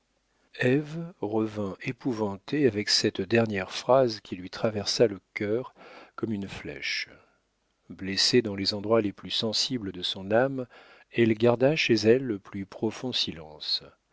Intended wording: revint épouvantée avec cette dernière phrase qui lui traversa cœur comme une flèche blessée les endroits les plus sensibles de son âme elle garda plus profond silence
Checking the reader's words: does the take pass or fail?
fail